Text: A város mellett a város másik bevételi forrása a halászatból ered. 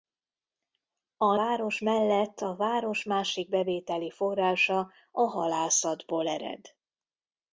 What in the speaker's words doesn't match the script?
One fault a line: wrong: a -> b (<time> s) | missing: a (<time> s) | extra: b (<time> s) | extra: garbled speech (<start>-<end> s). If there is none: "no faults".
no faults